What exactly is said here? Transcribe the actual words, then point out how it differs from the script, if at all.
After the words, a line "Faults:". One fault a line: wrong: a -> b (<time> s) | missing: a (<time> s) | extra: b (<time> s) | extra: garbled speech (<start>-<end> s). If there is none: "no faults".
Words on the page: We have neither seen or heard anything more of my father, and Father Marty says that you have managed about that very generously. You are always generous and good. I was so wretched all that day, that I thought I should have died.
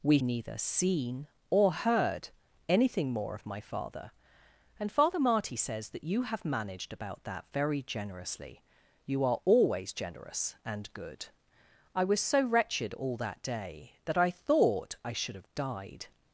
We neither seen or heard anything more of my father, and Father Marty says that you have managed about that very generously. You are always generous and good. I was so wretched all that day, that I thought I should have died.
Faults:
missing: have (0.2 s)